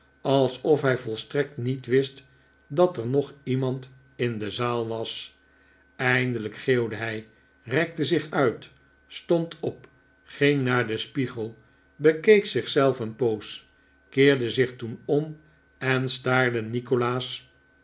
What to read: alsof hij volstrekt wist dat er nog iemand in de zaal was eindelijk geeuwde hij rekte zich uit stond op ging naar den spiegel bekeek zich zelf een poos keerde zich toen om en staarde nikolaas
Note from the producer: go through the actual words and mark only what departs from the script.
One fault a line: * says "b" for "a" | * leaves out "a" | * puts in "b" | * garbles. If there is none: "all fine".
* puts in "niet"